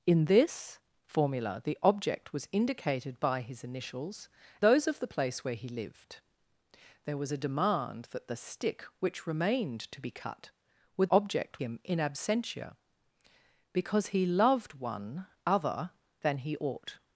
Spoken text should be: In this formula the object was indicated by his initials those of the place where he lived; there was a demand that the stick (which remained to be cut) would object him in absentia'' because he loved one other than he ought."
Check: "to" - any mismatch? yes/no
no